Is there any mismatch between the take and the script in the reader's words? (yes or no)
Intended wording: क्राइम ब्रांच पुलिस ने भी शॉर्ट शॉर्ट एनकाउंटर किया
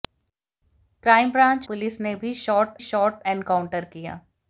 no